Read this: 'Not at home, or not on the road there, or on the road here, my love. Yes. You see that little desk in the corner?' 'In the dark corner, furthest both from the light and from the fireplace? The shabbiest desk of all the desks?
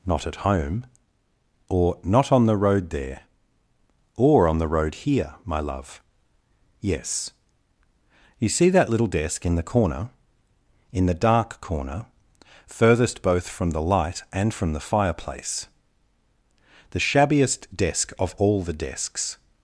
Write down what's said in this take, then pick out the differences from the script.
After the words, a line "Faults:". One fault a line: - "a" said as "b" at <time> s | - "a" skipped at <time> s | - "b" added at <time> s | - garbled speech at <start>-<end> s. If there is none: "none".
'Not at home, or not on the road there, or on the road here, my love. Yes. You see that little desk in the corner?' 'In the dark corner, furthest both from the light and from the fireplace? The shabbiest desk of all the desks?
Faults:
none